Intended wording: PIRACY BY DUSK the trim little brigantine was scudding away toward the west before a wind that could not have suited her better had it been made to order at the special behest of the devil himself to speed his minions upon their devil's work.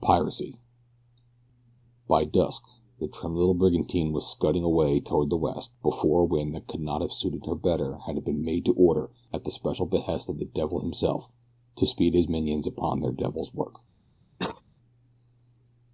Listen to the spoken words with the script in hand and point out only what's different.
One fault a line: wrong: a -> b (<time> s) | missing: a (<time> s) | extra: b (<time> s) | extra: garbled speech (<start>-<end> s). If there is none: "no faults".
no faults